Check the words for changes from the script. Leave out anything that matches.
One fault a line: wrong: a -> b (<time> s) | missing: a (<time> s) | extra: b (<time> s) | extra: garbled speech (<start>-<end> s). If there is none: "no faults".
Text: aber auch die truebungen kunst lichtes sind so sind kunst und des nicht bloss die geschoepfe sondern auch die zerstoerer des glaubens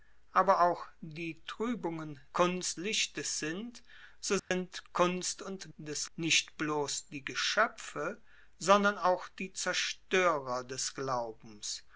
no faults